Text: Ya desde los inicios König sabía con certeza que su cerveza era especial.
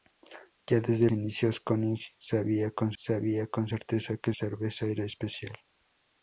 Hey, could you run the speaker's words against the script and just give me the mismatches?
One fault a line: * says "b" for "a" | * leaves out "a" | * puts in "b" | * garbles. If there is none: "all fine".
* leaves out "los"
* puts in "sabía con"
* leaves out "su"